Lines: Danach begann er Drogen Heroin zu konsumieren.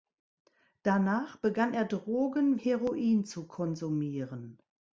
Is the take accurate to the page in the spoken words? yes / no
yes